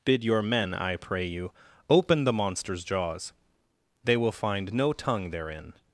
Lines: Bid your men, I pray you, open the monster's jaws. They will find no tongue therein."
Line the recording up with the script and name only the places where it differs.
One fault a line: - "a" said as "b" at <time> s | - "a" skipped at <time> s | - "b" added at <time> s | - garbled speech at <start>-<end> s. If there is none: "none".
none